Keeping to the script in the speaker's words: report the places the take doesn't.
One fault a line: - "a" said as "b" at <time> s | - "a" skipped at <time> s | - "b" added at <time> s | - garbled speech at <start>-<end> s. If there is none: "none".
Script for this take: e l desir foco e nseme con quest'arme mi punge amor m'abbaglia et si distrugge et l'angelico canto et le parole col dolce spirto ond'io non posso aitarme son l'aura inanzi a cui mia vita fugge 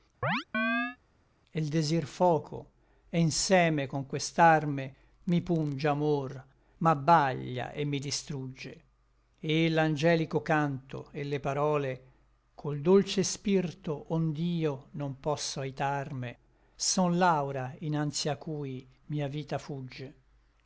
- "si" said as "mi" at 7.9 s